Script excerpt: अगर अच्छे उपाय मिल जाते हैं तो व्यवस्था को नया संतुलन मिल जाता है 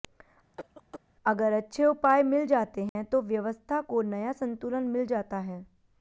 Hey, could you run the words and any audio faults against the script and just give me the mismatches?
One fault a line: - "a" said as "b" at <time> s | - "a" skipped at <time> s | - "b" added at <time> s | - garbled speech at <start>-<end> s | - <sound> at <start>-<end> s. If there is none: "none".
- cough at 0.5-1.0 s
- dropout at 2.9-3.0 s